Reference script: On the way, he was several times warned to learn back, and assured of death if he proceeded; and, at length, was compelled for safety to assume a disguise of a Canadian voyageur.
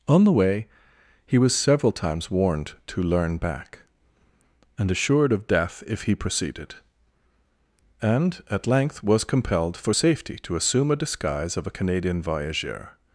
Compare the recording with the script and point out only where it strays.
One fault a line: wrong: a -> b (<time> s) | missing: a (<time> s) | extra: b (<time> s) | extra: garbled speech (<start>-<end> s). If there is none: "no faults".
no faults